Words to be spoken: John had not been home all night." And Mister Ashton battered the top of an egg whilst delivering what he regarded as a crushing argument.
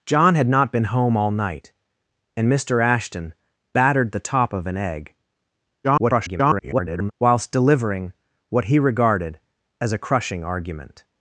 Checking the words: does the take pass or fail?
fail